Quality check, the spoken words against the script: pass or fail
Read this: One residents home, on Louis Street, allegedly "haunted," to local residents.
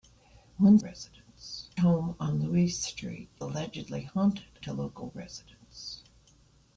pass